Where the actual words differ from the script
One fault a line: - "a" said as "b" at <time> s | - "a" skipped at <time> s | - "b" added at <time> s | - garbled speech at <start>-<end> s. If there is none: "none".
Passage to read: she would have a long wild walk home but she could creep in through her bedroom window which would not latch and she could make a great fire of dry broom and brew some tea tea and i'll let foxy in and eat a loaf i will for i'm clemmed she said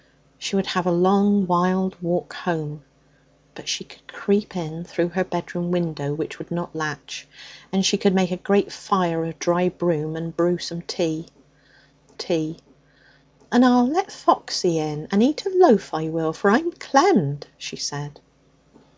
none